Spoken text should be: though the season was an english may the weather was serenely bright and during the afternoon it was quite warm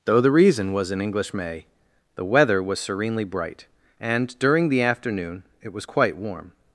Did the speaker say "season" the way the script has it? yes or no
no